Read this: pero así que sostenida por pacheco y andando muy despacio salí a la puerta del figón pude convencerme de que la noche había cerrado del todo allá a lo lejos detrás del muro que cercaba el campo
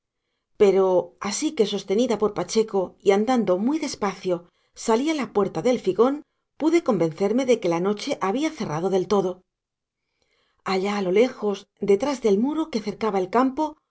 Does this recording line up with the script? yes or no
yes